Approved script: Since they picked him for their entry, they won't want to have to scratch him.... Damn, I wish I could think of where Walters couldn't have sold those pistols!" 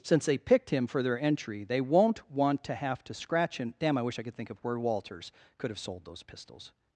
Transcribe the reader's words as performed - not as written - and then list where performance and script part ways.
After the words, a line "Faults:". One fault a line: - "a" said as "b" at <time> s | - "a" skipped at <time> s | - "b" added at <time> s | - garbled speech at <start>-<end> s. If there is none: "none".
Since they picked him for their entry, they won't want to have to scratch him.... Damn, I wish I could think of where Walters could have sold those pistols!"
Faults:
- "couldn't" said as "could" at 5.6 s